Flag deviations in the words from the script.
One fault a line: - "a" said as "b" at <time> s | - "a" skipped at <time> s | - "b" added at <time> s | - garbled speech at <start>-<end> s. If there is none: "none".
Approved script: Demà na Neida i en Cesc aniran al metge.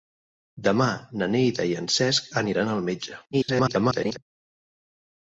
- garbled speech at 3.3-4.2 s